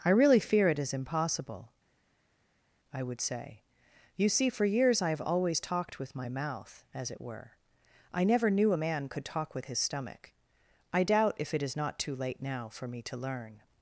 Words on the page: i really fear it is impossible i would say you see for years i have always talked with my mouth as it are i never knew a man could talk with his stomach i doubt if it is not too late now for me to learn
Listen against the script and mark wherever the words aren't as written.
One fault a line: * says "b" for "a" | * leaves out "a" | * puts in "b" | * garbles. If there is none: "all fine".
* says "were" for "are"